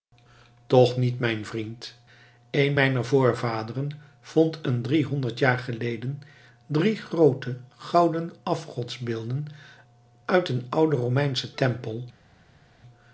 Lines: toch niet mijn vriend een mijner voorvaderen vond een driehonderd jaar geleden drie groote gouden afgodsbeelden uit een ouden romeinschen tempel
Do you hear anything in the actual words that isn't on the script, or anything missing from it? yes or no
no